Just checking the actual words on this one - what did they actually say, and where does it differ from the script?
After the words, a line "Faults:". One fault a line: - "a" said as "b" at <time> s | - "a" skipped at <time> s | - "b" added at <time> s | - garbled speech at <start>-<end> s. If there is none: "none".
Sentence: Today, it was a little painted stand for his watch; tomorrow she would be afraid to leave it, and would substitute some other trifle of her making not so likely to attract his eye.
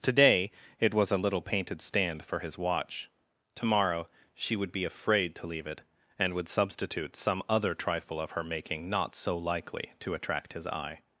Today, it was a little painted stand for his watch; tomorrow she would be afraid to leave it, and would substitute some other trifle of her making not so likely to attract his eye.
Faults:
none